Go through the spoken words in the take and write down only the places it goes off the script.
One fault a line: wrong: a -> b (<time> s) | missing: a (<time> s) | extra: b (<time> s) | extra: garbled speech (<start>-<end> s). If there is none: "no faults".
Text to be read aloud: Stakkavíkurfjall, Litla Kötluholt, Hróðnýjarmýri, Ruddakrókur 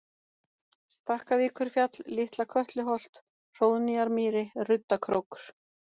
no faults